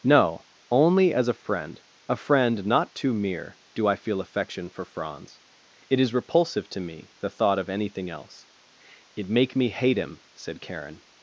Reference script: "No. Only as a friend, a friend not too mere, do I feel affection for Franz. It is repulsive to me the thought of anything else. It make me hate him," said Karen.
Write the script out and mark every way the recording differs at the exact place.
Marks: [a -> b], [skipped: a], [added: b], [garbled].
"No. Only as a friend, a friend not too mere, do I feel affection for Franz. It is repulsive to me the thought of anything else. It make me hate him," said Karen.